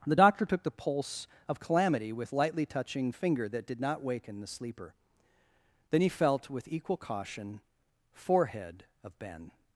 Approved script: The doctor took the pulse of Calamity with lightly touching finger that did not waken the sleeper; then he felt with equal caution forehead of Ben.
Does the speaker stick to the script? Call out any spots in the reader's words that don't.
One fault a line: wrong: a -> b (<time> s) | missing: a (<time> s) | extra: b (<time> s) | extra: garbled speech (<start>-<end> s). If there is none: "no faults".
no faults